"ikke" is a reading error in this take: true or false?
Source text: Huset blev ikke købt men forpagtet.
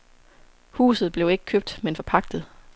false